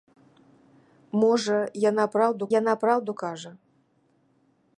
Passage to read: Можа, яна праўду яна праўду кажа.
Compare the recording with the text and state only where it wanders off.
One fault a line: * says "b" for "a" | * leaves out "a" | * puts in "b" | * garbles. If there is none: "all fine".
all fine